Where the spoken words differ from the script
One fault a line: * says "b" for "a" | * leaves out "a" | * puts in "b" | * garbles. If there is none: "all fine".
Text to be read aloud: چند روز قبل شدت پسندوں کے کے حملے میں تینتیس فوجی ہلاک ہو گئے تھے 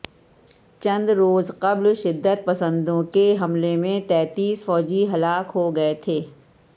* leaves out "کے"